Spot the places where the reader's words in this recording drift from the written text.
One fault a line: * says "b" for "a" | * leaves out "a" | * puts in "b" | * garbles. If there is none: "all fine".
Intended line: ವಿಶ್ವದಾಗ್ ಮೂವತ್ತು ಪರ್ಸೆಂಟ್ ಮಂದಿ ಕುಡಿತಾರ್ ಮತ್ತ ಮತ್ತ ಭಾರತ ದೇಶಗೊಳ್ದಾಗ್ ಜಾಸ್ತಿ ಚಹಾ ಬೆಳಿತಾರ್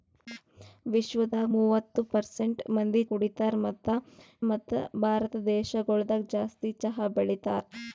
all fine